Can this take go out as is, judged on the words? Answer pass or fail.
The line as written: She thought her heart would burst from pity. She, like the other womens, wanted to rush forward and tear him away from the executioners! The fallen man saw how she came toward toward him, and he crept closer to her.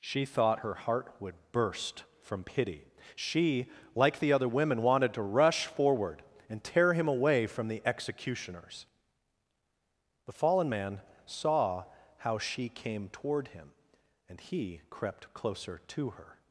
fail